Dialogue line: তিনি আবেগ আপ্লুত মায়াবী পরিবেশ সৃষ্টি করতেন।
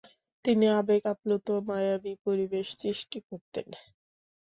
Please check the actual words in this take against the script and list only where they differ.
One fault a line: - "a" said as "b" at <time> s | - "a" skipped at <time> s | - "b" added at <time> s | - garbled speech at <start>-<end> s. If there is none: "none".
none